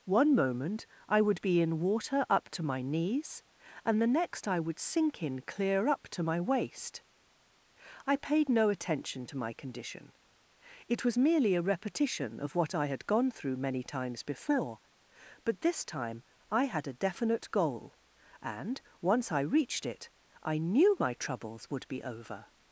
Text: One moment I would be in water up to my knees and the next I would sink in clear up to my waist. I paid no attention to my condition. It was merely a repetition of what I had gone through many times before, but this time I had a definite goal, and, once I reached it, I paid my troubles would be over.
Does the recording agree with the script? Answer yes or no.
no